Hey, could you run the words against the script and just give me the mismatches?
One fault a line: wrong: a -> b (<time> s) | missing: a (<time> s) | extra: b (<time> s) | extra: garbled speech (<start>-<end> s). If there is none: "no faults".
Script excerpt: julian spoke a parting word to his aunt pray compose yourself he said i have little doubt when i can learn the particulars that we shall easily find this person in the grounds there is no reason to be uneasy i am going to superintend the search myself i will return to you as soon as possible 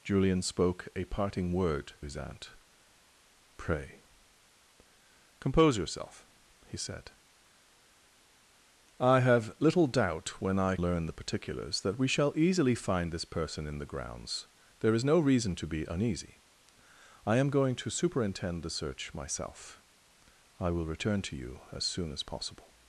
missing: to (1.9 s)
missing: can (10.8 s)